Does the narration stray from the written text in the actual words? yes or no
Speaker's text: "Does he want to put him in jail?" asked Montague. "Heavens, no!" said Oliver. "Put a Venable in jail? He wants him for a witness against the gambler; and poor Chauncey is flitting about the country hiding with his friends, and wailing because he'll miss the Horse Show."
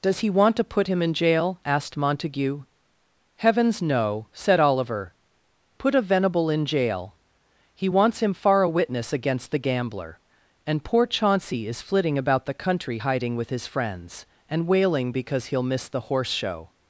yes